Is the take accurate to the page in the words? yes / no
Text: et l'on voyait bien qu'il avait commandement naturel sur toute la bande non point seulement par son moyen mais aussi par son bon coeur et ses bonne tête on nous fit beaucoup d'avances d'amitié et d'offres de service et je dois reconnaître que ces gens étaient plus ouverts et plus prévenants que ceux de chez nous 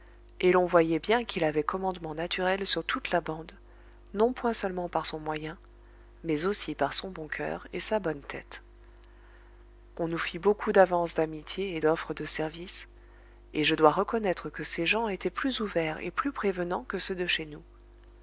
no